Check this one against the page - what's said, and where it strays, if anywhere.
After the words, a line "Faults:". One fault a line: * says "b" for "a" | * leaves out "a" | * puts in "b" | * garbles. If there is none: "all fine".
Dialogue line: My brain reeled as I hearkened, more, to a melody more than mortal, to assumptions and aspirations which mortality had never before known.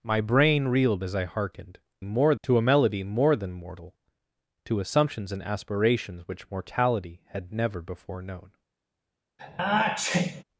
My brain reeled as I hearkened, more, to a melody more than mortal, to assumptions and aspirations which mortality had never before known.
Faults:
all fine